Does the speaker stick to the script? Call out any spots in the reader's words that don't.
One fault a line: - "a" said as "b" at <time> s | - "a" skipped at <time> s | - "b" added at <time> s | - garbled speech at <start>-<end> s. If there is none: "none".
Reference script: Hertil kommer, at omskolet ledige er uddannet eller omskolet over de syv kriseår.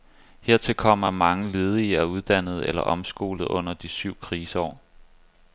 - "omskolet" said as "mange" at 1.1 s
- "over" said as "under" at 3.4 s